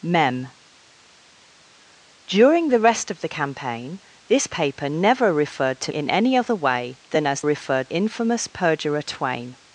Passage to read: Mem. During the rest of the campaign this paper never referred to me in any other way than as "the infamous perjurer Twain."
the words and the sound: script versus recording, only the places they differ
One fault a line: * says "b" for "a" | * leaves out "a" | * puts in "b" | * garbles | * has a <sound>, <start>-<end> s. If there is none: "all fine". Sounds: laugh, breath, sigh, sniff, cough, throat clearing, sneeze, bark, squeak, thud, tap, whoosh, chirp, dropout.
* leaves out "me"
* says "referred" for "the"